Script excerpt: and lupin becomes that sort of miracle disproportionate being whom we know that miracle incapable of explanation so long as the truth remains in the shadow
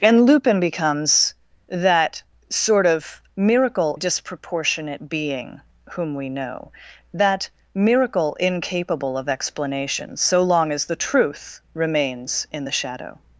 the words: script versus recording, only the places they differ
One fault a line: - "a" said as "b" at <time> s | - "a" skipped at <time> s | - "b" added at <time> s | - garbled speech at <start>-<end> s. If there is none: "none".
none